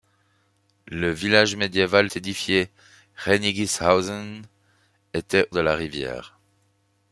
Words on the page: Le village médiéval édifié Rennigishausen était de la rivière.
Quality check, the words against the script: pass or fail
pass